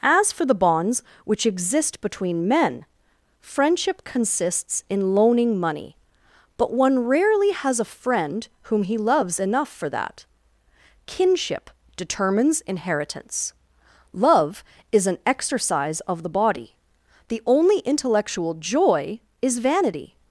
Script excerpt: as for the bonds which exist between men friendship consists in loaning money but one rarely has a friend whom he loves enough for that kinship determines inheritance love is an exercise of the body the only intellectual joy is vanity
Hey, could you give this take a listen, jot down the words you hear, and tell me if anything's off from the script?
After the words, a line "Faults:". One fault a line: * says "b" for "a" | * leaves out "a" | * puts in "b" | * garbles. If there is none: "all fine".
as for the bonds which exist between men friendship consists in loaning money but one rarely has a friend whom he loves enough for that kinship determines inheritance love is an exercise of the body the only intellectual joy is vanity
Faults:
all fine